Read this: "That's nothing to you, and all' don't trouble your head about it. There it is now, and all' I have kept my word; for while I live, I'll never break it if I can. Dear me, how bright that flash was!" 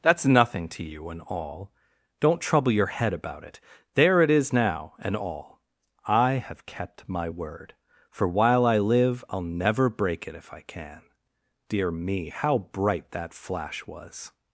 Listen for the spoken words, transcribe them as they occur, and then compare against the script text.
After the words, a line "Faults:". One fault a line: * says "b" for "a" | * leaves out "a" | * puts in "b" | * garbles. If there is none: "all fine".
"That's nothing to you, and all' don't trouble your head about it. There it is now, and all' I have kept my word; for while I live, I'll never break it if I can. Dear me, how bright that flash was!"
Faults:
all fine